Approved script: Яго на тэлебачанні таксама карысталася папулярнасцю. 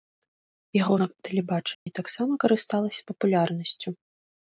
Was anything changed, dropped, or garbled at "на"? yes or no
no